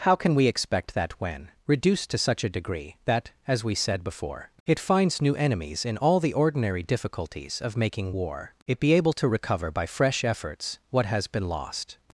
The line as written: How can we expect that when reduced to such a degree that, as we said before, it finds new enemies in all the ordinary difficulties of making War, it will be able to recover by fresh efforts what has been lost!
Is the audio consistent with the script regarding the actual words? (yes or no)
no